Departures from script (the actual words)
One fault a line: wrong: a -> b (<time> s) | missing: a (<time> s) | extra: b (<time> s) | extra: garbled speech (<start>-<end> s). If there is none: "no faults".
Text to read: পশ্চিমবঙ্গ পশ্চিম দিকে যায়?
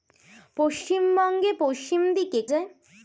no faults